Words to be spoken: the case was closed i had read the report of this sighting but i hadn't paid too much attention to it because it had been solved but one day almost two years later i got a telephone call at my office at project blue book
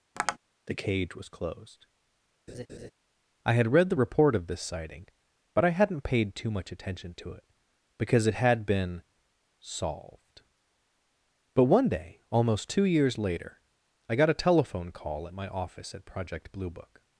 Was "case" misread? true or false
true